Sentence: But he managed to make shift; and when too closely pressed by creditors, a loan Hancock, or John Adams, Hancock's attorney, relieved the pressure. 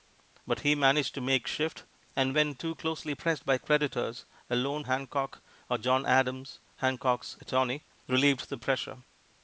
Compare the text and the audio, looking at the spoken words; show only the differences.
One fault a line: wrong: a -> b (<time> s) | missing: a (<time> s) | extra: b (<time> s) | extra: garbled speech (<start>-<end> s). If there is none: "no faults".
no faults